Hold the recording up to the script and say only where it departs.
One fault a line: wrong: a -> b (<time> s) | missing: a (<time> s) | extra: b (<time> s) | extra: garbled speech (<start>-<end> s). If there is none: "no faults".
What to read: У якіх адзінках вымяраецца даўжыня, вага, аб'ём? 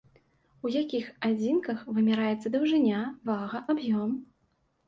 no faults